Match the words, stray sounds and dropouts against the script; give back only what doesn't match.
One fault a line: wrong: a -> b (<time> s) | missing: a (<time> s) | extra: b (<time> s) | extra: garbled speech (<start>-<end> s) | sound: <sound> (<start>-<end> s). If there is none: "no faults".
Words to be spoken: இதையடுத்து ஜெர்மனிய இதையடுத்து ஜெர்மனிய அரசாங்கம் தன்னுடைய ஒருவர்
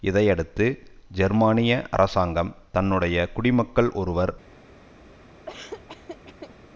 missing: இதையடுத்து ஜெர்மனிய (1.7 s)
extra: குடிமக்கள் (3.3 s)
sound: laugh (5.5-6.6 s)